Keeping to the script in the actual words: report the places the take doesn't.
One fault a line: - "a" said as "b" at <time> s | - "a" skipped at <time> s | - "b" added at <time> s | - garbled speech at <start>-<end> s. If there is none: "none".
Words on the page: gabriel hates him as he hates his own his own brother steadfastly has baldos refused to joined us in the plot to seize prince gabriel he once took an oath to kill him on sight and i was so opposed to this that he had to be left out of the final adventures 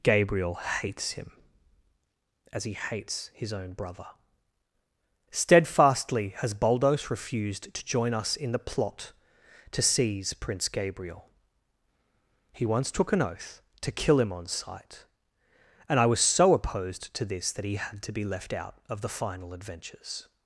- "his own" skipped at 3.7 s
- "joined" said as "join" at 7.8 s